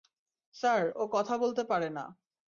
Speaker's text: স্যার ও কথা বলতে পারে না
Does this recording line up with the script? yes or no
yes